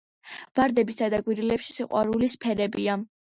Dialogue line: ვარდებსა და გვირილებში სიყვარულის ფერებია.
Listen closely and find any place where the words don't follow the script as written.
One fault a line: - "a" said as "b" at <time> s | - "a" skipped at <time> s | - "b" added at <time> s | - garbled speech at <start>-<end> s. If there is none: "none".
none